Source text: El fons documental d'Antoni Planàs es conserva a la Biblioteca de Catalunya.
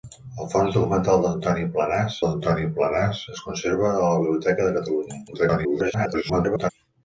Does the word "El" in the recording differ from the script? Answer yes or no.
no